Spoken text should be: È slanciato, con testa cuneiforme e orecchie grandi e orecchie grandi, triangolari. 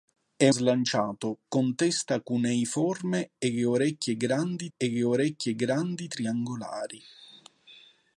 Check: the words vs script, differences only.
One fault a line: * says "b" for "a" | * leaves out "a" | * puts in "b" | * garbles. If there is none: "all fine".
all fine